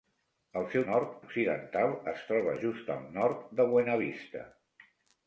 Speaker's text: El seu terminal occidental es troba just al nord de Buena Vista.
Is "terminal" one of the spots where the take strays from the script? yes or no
yes